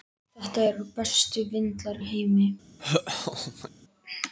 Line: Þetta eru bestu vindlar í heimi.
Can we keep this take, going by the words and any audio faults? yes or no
no